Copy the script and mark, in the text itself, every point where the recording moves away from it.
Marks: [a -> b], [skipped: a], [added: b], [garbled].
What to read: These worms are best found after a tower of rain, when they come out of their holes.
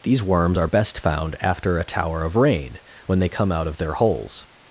These worms are best found after a tower of rain, when they come out of their holes.